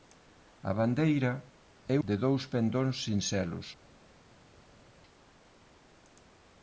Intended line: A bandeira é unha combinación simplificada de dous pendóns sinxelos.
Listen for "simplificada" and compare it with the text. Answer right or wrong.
wrong